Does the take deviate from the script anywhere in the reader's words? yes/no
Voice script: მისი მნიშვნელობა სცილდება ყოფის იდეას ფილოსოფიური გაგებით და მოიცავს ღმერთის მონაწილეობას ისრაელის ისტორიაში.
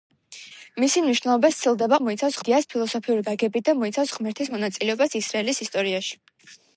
yes